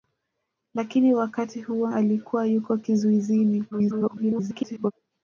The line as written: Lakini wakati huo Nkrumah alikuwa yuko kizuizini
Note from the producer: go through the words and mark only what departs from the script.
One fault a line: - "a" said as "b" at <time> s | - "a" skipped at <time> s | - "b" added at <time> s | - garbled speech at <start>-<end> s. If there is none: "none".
- "Nkrumah" skipped at 1.9 s
- garbled speech at 3.7-4.9 s